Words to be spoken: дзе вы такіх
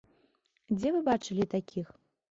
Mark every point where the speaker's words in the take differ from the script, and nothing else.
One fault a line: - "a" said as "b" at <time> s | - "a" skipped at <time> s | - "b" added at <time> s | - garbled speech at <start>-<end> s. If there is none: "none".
- "бачылі" added at 1.1 s